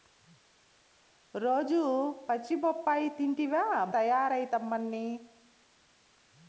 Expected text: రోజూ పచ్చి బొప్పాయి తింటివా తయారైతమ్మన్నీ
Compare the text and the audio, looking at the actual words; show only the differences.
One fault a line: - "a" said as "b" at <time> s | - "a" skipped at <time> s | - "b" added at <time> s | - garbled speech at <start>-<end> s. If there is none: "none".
none